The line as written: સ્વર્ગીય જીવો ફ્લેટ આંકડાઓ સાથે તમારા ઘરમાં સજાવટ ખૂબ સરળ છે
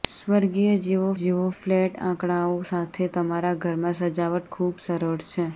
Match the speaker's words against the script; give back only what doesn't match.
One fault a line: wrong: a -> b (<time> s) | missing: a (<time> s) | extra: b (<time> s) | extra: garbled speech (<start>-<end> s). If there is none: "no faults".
extra: જીવો (1.1 s)